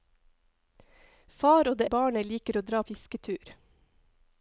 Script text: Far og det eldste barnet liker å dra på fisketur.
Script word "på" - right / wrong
wrong